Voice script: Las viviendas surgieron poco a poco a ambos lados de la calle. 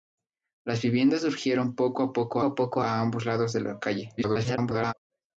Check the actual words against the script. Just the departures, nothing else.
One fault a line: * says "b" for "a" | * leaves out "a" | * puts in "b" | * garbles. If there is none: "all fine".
* puts in "poco a"
* garbles